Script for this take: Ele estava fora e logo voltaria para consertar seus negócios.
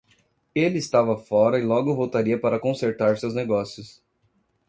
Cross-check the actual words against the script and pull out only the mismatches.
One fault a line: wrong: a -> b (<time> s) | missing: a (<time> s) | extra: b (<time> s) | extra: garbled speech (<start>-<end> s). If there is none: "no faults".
no faults